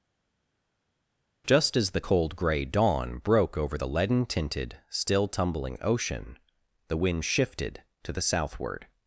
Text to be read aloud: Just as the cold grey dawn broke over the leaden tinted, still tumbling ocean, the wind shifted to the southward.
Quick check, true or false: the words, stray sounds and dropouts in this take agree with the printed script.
true